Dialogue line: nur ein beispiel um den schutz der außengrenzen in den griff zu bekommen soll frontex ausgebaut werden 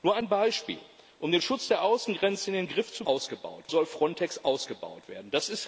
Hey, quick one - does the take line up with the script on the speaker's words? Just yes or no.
no